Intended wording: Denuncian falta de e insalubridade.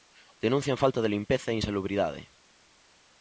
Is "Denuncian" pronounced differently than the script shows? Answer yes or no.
no